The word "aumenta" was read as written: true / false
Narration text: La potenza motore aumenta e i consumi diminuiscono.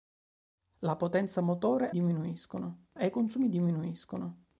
false